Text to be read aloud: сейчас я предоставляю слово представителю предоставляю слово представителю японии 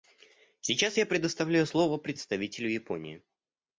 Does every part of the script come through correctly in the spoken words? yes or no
no